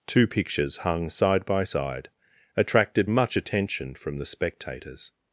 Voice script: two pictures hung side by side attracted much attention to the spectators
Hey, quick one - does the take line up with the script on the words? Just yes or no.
no